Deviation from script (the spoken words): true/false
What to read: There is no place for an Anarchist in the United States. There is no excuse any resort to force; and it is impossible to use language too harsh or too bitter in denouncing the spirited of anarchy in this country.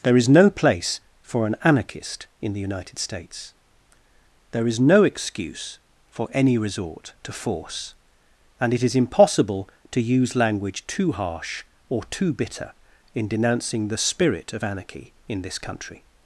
true